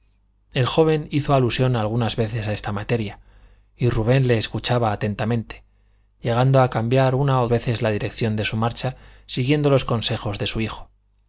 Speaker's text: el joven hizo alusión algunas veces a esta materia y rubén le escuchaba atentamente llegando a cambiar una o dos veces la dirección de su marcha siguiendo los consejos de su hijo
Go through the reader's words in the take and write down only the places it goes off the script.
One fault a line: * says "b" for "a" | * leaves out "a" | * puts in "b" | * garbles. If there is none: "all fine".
* leaves out "dos"